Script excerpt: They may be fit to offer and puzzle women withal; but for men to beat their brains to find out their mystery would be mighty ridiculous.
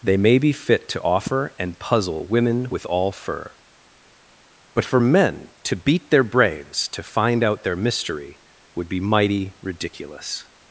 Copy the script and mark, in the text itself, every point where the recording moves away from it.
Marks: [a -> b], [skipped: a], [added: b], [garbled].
They may be fit to offer and puzzle women [withal; -> with all fur] but for men to beat their brains to find out their mystery would be mighty ridiculous.